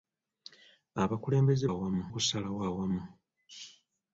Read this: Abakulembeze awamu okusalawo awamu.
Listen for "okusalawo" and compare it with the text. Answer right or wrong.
right